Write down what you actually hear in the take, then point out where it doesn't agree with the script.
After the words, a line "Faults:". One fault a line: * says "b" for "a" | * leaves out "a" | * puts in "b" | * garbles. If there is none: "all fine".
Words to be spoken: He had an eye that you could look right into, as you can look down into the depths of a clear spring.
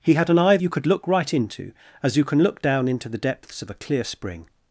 He had an eye you could look right into, as you can look down into the depths of a clear spring.
Faults:
* leaves out "that"